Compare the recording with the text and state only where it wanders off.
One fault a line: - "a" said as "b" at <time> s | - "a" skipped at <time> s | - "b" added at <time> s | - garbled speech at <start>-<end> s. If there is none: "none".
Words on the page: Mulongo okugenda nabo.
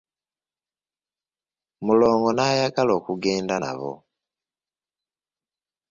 - "n'ayagala" added at 2.3 s